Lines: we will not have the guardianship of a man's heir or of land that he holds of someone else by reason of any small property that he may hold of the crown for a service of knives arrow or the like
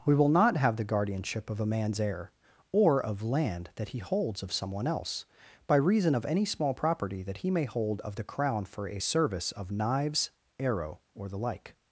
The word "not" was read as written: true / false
true